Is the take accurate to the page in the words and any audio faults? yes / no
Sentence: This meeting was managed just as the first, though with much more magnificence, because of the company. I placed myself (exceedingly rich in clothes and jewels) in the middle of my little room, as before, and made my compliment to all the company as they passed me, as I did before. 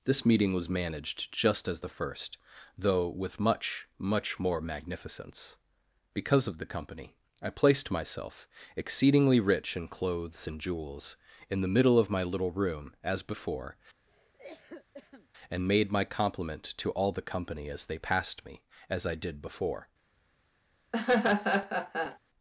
no